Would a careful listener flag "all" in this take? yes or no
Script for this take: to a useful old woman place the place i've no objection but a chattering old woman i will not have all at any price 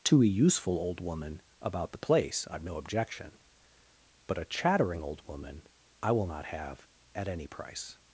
yes